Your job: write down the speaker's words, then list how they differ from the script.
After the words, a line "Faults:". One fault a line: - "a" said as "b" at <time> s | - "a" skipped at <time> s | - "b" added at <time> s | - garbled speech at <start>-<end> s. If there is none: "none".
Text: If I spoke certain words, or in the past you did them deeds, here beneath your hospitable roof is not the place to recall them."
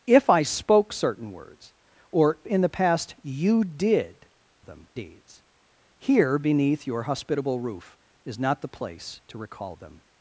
If I spoke certain words, or in the past you did them deeds, here beneath your hospitable roof is not the place to recall them."
Faults:
none